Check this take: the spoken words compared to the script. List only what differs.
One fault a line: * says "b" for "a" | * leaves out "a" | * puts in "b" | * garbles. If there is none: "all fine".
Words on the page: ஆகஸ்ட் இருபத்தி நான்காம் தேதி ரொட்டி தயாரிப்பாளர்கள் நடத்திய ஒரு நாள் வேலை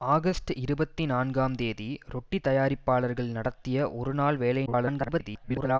* garbles